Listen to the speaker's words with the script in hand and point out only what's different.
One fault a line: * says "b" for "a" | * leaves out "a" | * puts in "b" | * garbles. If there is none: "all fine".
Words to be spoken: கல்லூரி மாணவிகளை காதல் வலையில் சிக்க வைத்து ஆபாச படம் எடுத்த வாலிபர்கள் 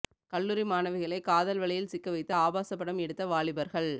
all fine